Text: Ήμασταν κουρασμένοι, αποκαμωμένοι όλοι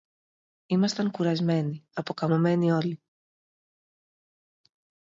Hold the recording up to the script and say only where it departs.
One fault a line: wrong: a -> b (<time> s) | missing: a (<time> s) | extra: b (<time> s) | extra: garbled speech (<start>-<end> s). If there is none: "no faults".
no faults